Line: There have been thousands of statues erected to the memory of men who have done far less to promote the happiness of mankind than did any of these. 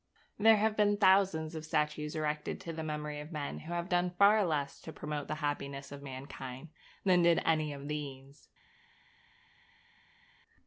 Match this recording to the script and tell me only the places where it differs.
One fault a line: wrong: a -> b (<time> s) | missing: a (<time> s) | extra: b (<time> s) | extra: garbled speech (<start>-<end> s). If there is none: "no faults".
no faults